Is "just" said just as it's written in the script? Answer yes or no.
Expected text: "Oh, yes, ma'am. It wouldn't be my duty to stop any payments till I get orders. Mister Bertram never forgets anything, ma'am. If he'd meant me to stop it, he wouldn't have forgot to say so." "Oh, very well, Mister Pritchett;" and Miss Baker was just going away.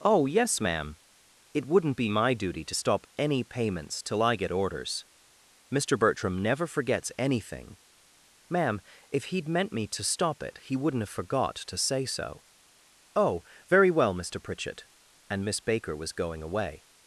no